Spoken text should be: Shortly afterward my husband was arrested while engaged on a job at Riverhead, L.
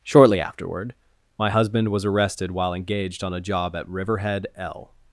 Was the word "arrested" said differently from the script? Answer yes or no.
no